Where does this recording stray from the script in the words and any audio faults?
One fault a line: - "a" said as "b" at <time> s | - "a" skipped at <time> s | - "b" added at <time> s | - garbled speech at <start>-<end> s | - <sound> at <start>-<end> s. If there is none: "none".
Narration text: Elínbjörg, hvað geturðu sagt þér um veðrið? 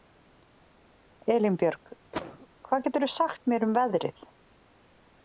- cough at 2.1-2.5 s
- "þér" said as "mér" at 3.5 s